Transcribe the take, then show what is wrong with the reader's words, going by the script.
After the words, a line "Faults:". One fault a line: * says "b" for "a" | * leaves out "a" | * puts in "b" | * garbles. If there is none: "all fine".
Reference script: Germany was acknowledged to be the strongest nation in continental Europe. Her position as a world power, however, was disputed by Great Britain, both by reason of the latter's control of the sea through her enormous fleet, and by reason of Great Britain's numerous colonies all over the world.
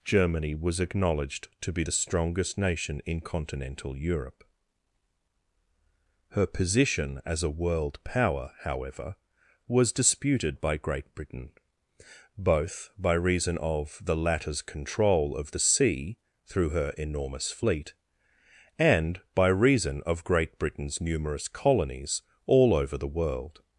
Germany was acknowledged to be the strongest nation in continental Europe. Her position as a world power, however, was disputed by Great Britain, both by reason of the latter's control of the sea through her enormous fleet, and by reason of Great Britain's numerous colonies all over the world.
Faults:
all fine